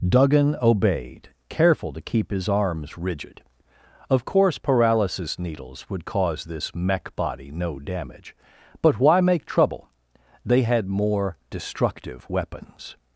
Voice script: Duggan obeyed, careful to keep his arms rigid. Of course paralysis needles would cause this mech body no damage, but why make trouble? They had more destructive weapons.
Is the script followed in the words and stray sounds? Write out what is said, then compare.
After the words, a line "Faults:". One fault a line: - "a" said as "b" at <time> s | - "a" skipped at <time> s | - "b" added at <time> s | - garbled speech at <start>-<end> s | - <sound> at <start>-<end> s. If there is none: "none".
Duggan obeyed, careful to keep his arms rigid. Of course paralysis needles would cause this mech body no damage, but why make trouble? They had more destructive weapons.
Faults:
none